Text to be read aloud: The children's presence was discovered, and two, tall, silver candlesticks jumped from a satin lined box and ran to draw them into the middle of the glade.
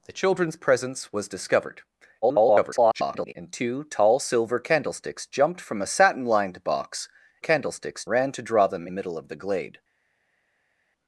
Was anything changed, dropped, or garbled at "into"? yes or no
yes